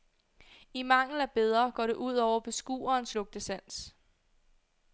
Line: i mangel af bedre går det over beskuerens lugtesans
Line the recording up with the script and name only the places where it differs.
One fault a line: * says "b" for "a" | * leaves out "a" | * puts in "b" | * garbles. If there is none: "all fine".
* puts in "ud"